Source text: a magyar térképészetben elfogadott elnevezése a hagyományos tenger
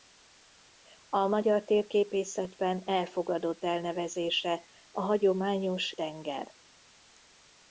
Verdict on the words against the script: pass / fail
pass